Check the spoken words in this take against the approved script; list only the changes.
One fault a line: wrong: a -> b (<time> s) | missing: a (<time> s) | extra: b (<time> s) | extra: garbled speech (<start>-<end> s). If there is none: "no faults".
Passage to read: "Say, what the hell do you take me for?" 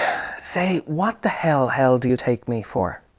extra: hell (1.7 s)